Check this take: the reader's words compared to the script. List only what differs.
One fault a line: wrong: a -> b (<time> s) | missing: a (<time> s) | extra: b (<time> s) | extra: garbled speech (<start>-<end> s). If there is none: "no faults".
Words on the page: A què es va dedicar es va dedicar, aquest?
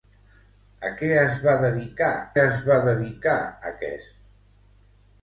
no faults